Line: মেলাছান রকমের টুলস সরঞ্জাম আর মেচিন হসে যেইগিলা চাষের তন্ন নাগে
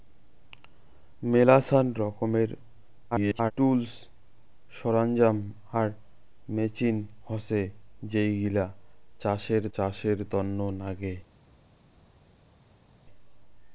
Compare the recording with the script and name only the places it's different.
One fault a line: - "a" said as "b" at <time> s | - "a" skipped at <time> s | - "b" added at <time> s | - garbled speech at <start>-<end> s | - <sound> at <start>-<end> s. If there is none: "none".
- garbled speech at 3.1-3.5 s
- "চাষের" added at 9.7 s